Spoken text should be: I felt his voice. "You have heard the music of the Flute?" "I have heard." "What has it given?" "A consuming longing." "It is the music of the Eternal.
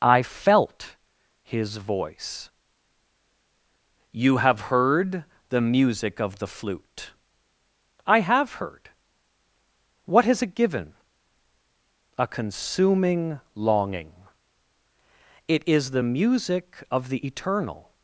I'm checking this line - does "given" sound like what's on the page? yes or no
yes